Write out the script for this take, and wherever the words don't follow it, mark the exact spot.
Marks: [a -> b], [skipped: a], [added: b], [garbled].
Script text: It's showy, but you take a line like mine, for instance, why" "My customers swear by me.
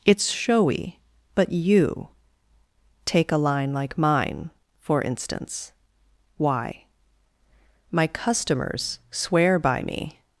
It's showy, but you take a line like mine, for instance, why" "My customers swear by me.